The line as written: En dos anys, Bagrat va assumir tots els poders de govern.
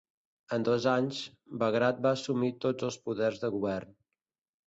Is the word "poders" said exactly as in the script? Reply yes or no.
yes